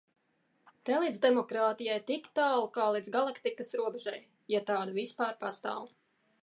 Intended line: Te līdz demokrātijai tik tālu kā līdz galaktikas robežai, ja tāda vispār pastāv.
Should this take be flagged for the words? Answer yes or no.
no